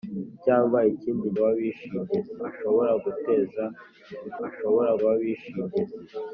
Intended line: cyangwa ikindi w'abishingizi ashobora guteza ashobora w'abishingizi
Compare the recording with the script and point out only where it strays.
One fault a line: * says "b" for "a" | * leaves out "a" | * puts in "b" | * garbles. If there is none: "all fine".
all fine